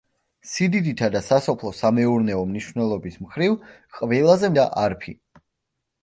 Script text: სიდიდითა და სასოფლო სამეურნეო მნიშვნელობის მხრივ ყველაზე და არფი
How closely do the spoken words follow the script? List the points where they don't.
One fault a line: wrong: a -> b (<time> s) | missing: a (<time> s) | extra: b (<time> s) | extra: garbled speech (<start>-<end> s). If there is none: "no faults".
no faults